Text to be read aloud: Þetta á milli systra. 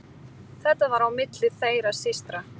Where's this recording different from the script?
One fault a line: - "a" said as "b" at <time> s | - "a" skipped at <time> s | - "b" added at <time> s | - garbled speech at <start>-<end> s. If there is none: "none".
- "var" added at 0.9 s
- "þeirra" added at 1.6 s